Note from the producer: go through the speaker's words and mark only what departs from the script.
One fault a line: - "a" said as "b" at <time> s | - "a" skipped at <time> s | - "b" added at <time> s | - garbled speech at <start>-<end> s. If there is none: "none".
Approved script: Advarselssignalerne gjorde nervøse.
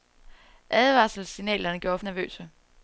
none